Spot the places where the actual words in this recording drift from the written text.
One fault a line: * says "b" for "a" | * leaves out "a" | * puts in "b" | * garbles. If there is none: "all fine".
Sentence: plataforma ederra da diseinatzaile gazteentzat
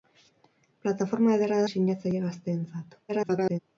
* leaves out "da"
* garbles